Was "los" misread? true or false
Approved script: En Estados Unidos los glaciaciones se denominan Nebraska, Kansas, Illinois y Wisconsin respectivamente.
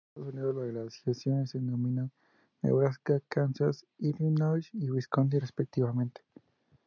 true